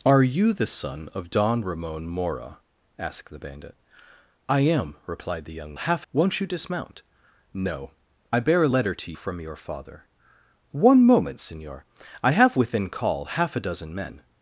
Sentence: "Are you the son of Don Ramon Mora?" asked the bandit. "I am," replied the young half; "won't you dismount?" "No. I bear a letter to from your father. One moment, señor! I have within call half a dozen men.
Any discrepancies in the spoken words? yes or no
no